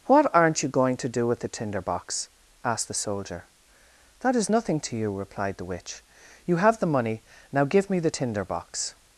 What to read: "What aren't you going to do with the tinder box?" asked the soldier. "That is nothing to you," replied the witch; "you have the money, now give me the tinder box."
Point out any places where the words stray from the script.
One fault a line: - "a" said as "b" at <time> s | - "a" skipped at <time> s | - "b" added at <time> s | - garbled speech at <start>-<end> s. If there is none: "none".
none